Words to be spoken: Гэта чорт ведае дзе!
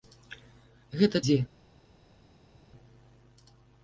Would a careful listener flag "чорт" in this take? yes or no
yes